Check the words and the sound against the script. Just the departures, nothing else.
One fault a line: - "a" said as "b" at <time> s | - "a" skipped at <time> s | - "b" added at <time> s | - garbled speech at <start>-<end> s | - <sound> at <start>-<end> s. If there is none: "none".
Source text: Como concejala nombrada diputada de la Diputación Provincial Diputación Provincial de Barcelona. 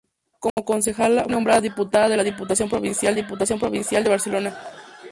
- dropout at 0.5-0.6 s